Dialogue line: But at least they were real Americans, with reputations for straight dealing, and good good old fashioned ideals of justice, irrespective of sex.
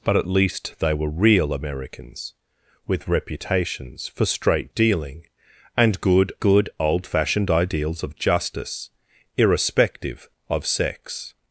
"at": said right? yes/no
yes